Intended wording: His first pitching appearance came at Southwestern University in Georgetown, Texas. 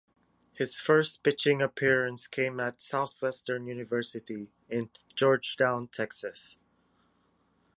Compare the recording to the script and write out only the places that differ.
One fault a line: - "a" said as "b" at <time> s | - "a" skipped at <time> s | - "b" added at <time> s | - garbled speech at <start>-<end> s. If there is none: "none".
none